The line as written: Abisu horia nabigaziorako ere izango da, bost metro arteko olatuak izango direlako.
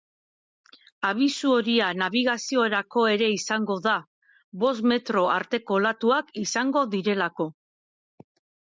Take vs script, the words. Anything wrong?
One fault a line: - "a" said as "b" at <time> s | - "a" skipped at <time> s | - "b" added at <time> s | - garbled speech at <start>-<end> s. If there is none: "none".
none